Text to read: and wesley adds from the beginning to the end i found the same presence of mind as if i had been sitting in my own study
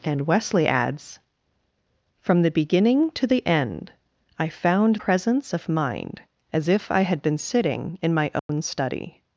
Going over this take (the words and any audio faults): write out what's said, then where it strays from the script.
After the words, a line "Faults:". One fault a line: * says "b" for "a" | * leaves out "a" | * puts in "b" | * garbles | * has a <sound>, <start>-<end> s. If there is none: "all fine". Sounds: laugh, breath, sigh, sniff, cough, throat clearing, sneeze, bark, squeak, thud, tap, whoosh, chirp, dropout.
and wesley adds from the beginning to the end i found presence of mind as if i had been sitting in my own study
Faults:
* leaves out "the same"
* has a dropout, 8.4-8.5 s